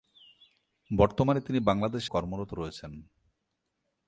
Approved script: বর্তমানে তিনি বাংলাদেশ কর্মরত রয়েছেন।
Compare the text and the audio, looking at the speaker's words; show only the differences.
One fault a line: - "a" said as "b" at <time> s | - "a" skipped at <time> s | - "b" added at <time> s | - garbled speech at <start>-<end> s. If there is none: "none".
none